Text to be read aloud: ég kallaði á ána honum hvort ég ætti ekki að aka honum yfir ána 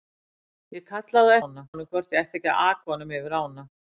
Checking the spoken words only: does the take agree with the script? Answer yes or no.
yes